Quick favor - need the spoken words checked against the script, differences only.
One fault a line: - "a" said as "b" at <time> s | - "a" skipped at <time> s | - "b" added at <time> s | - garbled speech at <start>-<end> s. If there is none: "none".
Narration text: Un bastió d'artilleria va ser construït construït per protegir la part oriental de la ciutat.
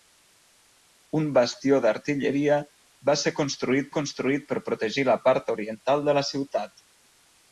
none